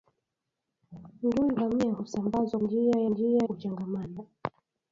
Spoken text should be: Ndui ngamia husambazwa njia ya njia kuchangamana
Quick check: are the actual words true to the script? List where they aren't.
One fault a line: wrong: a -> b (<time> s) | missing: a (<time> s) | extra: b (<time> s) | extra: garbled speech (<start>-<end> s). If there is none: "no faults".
no faults